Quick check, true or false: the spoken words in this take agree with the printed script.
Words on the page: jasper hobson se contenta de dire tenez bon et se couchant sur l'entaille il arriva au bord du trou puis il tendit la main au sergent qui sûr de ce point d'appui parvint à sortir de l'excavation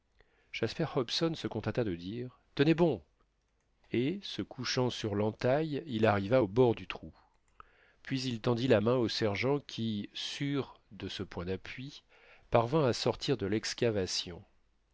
true